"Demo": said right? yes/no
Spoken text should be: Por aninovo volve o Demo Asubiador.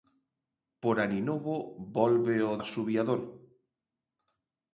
no